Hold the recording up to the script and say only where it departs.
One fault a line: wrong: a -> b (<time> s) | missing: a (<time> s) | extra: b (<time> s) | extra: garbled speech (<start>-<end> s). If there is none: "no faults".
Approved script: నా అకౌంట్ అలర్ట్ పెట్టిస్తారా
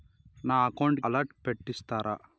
no faults